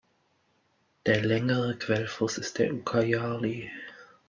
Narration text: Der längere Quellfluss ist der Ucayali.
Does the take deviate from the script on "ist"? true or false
false